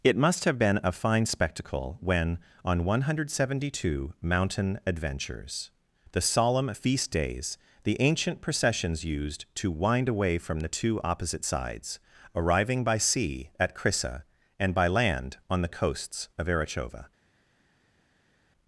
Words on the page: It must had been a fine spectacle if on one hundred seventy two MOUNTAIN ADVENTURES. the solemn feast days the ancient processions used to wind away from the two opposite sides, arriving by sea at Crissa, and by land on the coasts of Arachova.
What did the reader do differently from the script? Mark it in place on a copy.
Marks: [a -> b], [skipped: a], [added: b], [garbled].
It must [had -> have] been a fine spectacle [if -> when] on one hundred seventy two MOUNTAIN ADVENTURES. the solemn feast days the ancient processions used to wind away from the two opposite sides, arriving by sea at Crissa, and by land on the coasts of Arachova.